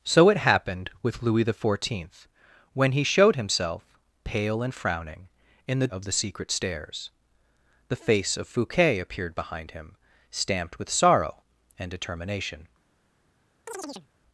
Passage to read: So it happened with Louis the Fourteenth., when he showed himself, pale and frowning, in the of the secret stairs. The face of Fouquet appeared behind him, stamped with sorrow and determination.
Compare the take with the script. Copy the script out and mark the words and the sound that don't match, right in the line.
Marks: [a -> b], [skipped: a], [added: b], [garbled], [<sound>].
So it happened with Louis the Fourteenth., when he showed himself, pale and frowning, in the of the secret stairs. The face of Fouquet appeared behind him, stamped with sorrow and determination. [chirp]